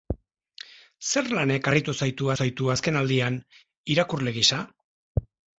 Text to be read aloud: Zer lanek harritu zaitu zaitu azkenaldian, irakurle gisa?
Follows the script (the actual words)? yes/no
yes